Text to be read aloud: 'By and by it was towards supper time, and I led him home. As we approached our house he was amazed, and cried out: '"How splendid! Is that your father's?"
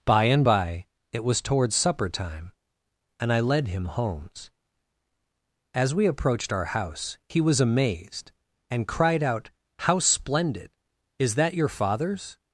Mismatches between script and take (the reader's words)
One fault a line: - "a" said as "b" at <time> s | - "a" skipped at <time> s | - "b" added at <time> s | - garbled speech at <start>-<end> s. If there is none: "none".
- "home" said as "homes" at 3.9 s